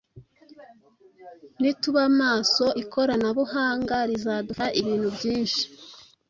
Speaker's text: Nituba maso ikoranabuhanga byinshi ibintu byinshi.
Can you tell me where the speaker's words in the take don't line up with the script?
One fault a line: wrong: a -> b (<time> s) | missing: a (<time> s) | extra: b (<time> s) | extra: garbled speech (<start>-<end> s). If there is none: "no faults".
wrong: byinshi -> rizadufasha (4.1 s)